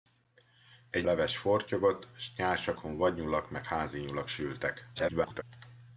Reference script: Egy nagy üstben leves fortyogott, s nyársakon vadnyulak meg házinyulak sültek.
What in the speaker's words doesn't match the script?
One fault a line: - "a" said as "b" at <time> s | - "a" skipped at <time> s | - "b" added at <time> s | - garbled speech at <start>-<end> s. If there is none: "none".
- "nagy üstben" skipped at 1.1 s
- garbled speech at 5.0-5.4 s